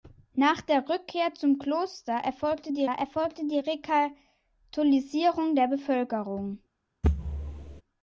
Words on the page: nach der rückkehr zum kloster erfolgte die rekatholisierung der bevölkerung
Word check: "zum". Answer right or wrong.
right